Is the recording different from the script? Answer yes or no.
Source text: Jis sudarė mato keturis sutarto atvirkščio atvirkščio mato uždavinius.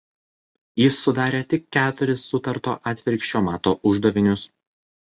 yes